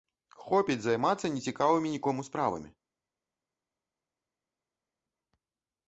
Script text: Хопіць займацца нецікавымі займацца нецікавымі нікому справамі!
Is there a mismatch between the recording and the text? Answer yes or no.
yes